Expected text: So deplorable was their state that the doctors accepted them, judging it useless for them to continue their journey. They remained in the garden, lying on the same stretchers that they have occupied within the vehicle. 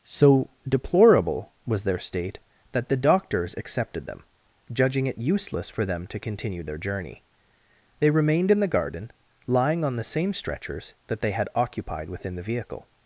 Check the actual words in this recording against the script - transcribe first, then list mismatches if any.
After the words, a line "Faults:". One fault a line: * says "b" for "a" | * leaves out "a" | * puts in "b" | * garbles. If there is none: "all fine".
So deplorable was their state that the doctors accepted them, judging it useless for them to continue their journey. They remained in the garden, lying on the same stretchers that they had occupied within the vehicle.
Faults:
* says "had" for "have"